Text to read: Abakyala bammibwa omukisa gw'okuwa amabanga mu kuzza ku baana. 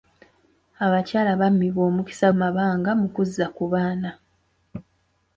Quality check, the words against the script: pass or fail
fail